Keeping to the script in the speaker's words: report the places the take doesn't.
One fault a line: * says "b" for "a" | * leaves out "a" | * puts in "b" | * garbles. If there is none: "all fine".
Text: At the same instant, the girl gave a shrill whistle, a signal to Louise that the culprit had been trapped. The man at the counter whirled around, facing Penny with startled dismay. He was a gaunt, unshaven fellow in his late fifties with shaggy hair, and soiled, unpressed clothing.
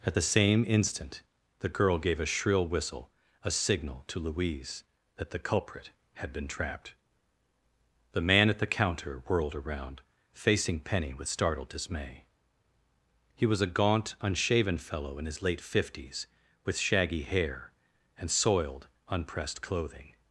all fine